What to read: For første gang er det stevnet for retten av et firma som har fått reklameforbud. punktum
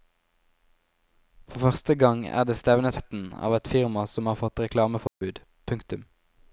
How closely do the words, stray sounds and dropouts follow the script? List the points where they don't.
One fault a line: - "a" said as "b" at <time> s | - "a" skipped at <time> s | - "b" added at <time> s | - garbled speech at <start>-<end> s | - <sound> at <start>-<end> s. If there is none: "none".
- "for" skipped at 3.0 s
- dropout at 5.1-5.2 s